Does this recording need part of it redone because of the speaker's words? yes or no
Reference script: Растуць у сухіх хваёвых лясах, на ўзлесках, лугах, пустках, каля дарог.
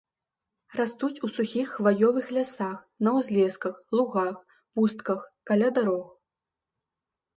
no